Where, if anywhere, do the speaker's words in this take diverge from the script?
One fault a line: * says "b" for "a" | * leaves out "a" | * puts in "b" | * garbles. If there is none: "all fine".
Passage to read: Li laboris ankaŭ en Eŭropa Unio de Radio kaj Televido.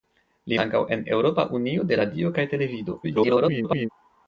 * leaves out "laboris"
* garbles